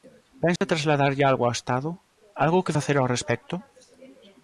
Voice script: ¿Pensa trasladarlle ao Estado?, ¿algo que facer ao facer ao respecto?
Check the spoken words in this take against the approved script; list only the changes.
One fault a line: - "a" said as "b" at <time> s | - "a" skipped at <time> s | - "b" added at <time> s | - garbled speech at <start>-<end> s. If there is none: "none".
- "algo" added at 1.2 s
- "facer ao" skipped at 3.1 s